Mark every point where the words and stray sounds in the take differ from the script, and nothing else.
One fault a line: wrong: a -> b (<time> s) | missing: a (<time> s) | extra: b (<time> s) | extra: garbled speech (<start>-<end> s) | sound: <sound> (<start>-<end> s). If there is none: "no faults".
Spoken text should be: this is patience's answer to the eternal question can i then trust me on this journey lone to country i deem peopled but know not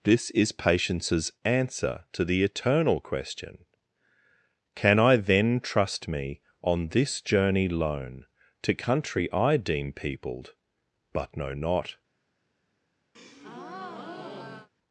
sound: breath (13.1-14.7 s)